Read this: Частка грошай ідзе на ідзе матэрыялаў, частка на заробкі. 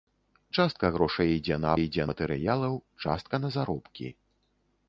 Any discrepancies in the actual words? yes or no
no